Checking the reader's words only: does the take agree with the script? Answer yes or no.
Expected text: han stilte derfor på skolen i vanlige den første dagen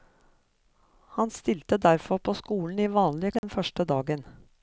yes